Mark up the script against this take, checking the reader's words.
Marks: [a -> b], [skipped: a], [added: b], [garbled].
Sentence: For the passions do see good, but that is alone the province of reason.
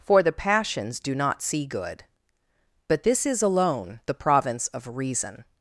For the passions do [added: not] see good, but [that -> this] is alone the province of reason.